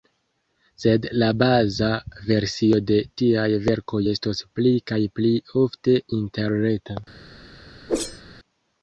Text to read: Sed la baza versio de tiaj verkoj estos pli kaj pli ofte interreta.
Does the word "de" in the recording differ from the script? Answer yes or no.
no